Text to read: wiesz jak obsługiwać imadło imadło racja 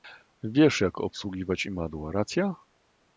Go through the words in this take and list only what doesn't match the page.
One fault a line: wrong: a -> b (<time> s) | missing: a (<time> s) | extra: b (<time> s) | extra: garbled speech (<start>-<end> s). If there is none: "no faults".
missing: imadło (2.1 s)